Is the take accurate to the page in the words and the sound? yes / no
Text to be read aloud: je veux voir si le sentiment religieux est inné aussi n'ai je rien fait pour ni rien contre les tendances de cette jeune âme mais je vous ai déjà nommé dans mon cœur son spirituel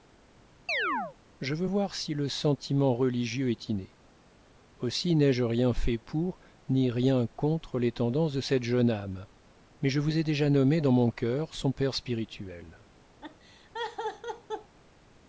no